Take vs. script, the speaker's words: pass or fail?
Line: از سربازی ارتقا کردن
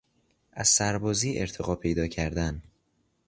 fail